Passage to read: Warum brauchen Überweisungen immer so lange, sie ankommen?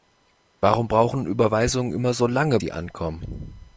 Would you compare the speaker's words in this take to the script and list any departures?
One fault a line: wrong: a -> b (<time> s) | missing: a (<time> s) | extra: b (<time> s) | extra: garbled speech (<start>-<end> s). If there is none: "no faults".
no faults